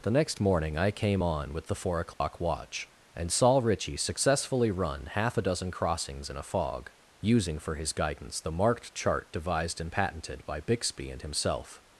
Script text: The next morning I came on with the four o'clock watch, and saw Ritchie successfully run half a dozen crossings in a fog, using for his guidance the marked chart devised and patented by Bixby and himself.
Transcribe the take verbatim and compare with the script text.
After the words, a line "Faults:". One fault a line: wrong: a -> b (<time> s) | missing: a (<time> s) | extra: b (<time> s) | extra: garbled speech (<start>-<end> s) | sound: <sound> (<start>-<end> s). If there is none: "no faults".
The next morning I came on with the four o'clock watch, and saw Ritchie successfully run half a dozen crossings in a fog, using for his guidance the marked chart devised and patented by Bixby and himself.
Faults:
sound: dropout (2.1-2.2 s)